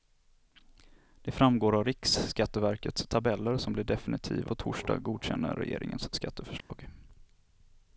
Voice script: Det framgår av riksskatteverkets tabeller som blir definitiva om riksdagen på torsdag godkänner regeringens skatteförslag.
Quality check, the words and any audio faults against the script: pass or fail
fail